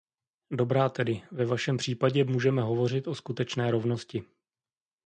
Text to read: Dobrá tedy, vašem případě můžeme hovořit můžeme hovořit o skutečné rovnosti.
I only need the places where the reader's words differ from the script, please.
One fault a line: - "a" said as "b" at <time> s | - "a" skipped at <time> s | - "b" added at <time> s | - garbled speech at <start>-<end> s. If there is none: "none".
- "ve" added at 1.3 s
- "můžeme hovořit" skipped at 3.1 s